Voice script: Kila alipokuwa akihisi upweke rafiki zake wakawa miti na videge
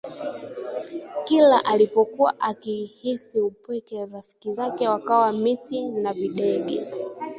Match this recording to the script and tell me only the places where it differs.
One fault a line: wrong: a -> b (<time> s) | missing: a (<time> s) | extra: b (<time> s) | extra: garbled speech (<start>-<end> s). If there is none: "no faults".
no faults